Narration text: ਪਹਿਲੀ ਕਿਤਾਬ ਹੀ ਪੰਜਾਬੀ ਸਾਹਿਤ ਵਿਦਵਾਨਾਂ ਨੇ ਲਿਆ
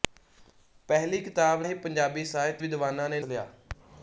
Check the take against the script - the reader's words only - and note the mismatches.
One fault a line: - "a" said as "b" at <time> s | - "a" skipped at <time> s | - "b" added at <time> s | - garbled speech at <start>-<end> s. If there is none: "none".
none